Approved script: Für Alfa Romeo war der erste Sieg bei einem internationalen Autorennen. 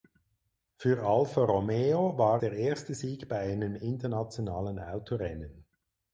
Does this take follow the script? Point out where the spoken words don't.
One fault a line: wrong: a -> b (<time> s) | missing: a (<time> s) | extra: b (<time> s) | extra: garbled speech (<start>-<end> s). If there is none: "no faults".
no faults